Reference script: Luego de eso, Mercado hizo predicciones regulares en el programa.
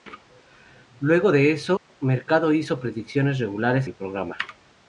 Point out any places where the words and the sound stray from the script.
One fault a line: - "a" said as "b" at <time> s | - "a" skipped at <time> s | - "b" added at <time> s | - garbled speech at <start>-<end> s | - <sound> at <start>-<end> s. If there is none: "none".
- dropout at 1.8-1.9 s
- "en" skipped at 3.9 s